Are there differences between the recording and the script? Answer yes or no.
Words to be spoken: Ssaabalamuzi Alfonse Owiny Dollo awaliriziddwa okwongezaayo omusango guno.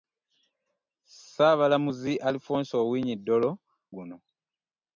yes